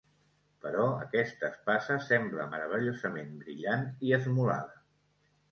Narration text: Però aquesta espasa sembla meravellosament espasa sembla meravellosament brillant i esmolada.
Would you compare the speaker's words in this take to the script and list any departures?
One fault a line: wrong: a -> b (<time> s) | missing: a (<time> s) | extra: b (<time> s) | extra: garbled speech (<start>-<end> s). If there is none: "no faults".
missing: espasa sembla meravellosament (3.3 s)